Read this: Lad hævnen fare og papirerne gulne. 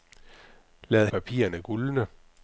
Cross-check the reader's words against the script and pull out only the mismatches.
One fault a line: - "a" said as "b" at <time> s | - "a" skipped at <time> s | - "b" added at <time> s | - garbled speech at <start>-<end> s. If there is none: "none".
- "hævnen fare og" skipped at 1.1 s